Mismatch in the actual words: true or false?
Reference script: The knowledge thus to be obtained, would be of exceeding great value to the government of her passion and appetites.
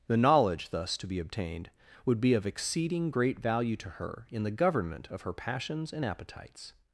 true